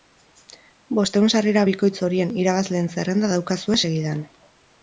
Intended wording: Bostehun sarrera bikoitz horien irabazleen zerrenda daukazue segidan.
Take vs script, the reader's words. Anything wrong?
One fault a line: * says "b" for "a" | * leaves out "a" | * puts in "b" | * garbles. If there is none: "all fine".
all fine